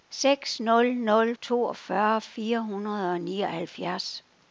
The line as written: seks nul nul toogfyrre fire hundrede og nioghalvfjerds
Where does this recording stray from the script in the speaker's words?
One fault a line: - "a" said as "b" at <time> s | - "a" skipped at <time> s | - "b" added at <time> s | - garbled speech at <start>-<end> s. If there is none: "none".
none